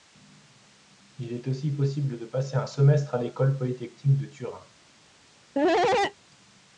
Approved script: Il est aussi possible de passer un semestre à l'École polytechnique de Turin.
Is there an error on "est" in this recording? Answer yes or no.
no